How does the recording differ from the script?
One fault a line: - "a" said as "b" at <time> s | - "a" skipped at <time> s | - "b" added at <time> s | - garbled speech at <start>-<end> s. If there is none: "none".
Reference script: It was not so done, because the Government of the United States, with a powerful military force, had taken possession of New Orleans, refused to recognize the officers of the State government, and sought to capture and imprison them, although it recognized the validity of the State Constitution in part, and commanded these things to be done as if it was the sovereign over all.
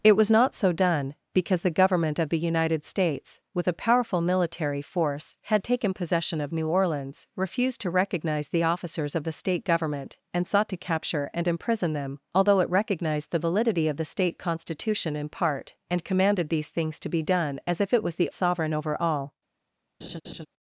none